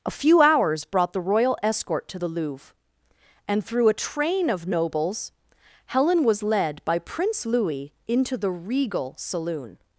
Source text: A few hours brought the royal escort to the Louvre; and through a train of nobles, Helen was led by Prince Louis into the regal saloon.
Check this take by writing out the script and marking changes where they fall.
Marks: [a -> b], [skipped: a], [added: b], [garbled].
A few hours brought the royal escort to the Louvre; and through a train of nobles, Helen was led by Prince Louis into the regal saloon.